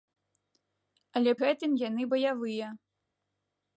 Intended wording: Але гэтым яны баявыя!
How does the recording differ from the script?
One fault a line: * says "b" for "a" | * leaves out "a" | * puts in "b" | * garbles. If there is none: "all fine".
all fine